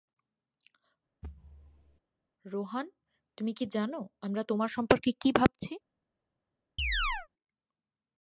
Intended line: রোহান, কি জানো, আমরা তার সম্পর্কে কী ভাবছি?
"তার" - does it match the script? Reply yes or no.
no